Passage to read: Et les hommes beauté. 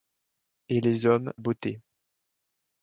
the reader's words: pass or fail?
pass